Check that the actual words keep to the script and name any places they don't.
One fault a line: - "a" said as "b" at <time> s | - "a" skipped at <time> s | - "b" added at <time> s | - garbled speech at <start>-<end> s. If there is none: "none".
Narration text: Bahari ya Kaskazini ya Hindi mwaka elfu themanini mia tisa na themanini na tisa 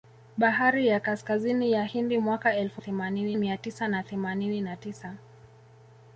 none